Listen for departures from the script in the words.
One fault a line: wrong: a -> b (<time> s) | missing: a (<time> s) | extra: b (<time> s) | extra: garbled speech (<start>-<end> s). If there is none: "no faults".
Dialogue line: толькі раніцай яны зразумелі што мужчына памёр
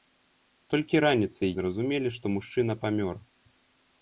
missing: яны (1.5 s)